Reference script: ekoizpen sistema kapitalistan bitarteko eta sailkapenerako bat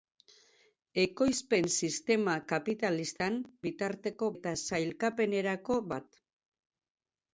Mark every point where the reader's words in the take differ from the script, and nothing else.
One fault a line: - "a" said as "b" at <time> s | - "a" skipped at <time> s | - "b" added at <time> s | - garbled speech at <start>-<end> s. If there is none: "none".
none